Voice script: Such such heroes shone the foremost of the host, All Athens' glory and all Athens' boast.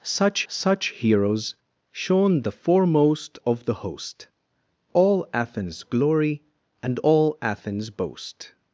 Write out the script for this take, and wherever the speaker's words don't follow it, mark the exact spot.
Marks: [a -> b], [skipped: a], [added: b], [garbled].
Such such heroes shone the foremost of the host, All Athens' glory and all Athens' boast.